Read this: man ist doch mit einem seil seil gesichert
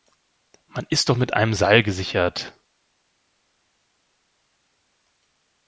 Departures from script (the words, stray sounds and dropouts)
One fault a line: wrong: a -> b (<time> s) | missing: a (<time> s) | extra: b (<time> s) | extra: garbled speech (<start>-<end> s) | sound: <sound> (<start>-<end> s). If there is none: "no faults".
missing: seil (1.8 s)